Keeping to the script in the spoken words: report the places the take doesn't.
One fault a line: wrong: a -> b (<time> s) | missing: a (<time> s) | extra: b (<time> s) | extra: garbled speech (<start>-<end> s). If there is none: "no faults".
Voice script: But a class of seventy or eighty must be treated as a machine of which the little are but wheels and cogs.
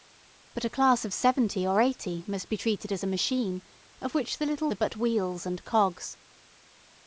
no faults